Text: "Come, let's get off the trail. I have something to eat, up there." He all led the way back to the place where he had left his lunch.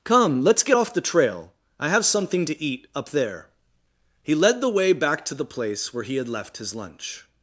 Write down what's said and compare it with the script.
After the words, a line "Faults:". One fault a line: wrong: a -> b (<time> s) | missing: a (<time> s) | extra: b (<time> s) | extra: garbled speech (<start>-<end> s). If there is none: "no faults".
"Come, let's get off the trail. I have something to eat, up there." He led the way back to the place where he had left his lunch.
Faults:
missing: all (4.3 s)